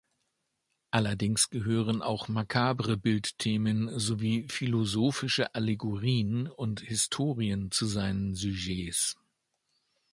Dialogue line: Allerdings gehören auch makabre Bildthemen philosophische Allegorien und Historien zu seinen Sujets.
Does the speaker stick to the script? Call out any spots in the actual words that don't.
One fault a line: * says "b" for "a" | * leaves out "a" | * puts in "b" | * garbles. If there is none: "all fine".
* puts in "sowie"